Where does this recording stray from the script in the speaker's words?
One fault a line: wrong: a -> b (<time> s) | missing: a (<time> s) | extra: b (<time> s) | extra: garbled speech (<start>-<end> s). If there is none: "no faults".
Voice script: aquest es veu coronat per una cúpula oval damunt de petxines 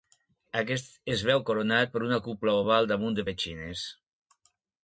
no faults